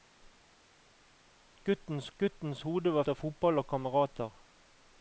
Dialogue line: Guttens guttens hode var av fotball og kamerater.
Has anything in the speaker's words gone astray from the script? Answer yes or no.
no